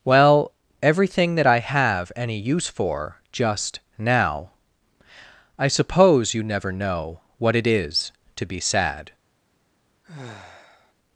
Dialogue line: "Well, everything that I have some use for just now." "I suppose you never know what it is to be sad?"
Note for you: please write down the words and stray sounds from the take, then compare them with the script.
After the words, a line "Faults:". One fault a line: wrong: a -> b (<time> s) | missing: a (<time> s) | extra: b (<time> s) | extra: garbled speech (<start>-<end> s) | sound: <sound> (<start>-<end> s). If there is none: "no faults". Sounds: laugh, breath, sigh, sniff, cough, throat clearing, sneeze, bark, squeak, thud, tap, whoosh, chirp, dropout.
"Well, everything that I have any use for just now." "I suppose you never know what it is to be sad?"
Faults:
wrong: some -> any (2.1 s)
sound: sigh (10.0-10.9 s)